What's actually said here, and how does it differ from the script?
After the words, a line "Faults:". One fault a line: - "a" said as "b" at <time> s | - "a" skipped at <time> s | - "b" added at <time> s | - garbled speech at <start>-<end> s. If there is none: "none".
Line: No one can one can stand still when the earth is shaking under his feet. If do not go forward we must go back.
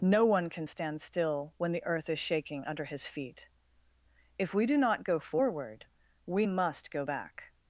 No one can stand still when the earth is shaking under his feet. If we do not go forward we must go back.
Faults:
- "one can" skipped at 0.7 s
- "we" added at 4.5 s